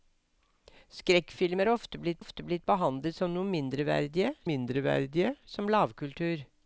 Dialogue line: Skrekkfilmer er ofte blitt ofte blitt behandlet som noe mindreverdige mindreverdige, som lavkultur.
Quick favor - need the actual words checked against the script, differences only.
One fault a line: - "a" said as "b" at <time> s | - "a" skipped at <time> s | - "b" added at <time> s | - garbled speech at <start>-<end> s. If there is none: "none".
none